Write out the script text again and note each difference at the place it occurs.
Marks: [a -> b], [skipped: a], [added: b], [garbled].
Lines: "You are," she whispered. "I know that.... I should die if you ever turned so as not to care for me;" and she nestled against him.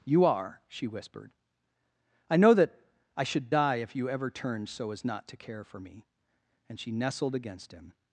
"You are," she whispered. "I know that.... I should die if you ever turned so as not to care for me;" and she nestled against him.